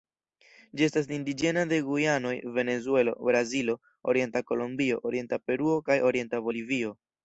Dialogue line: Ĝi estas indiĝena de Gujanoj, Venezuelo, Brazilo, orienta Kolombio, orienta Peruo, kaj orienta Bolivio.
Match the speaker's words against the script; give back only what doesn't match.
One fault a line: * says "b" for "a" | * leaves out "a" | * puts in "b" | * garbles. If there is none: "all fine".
all fine